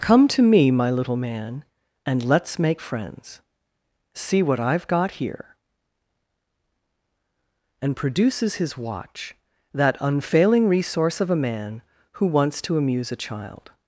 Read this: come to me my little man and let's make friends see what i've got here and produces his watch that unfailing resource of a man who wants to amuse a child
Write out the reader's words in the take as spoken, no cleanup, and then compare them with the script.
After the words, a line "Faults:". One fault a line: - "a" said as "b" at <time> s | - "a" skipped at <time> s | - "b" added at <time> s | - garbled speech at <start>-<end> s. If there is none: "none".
come to me my little man and let's make friends see what i've got here and produces his watch that unfailing resource of a man who wants to amuse a child
Faults:
none